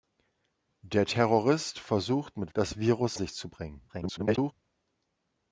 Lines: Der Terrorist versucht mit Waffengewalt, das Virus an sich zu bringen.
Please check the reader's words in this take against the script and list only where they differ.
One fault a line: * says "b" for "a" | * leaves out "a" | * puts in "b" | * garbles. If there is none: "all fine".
* leaves out "Waffengewalt"
* leaves out "an"
* garbles